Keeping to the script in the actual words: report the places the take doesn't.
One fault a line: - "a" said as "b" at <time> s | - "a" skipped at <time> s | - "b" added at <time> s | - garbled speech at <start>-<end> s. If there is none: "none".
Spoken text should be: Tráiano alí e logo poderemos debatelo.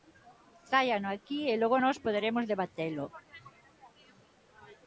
- "alí" said as "aquí" at 1.1 s
- "nós" added at 1.8 s